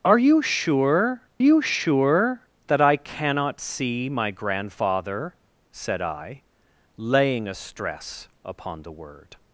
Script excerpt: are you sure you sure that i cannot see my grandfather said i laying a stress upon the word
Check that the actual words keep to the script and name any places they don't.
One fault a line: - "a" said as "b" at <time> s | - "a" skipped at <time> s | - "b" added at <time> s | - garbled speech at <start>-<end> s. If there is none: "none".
none